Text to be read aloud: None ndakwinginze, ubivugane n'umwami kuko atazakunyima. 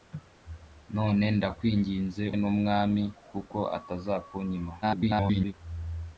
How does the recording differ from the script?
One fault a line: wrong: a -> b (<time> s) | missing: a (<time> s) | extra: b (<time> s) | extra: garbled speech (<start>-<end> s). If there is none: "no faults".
missing: ubivugane (2.2 s)
extra: garbled speech (4.8-5.5 s)